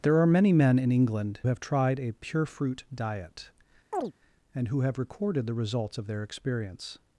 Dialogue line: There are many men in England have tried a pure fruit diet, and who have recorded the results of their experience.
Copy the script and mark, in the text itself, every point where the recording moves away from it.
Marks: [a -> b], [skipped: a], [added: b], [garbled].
There are many men in England have tried a pure fruit diet, and who have recorded the results of their experience.